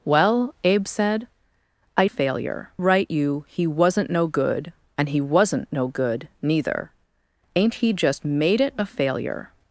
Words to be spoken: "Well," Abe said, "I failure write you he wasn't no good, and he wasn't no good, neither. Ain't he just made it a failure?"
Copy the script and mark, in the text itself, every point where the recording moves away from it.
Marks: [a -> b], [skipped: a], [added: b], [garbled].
"Well," Abe said, "I failure write you he wasn't no good, and he wasn't no good, neither. Ain't he just made it a failure?"